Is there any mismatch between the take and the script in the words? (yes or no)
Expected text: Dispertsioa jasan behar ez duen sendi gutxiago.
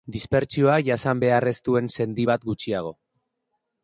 yes